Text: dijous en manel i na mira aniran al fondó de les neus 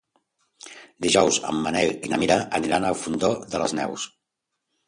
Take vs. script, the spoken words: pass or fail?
pass